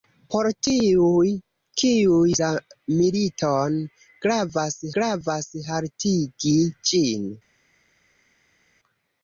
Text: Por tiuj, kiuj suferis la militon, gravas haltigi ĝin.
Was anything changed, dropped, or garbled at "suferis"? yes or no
yes